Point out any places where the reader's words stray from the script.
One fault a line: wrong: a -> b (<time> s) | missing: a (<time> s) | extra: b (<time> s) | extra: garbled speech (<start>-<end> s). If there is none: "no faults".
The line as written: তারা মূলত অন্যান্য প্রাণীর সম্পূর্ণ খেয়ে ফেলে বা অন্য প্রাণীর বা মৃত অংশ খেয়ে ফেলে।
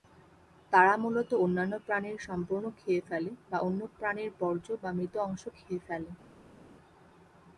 extra: বর্জ্য (4.4 s)